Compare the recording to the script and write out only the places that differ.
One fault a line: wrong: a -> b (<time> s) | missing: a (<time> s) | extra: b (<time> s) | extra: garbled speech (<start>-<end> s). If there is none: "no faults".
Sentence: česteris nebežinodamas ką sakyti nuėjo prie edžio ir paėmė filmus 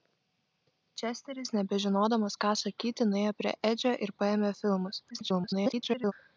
extra: garbled speech (5.1-6.1 s)